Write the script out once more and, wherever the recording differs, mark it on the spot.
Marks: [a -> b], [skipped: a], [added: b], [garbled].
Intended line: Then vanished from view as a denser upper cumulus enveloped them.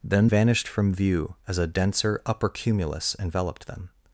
Then vanished from view as a denser upper cumulus enveloped them.